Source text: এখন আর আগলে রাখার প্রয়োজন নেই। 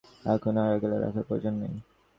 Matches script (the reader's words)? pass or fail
pass